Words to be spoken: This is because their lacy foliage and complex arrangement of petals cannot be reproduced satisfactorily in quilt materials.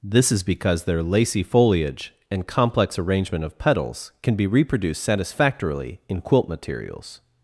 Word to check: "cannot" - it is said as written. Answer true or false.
false